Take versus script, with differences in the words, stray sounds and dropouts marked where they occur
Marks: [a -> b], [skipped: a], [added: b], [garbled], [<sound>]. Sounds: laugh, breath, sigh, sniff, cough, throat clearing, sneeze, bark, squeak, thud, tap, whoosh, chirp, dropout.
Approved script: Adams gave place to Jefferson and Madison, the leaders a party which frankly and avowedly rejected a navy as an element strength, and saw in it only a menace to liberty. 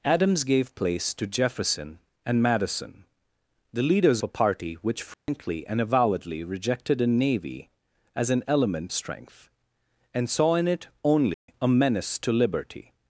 Adams gave place to Jefferson and Madison, the leaders a party which frankly [dropout] and avowedly rejected a navy as an element strength, and saw in it only [dropout] a menace to liberty.